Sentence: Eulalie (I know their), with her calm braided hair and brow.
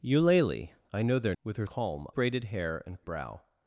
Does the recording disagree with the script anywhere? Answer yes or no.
no